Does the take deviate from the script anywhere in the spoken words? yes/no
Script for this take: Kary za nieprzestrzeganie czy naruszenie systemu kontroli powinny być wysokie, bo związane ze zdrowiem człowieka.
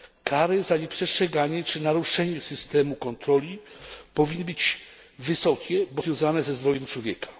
no